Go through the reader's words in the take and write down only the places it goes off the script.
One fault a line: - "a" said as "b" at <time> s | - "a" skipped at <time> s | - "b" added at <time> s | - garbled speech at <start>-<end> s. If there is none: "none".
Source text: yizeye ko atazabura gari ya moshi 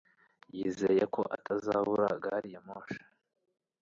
none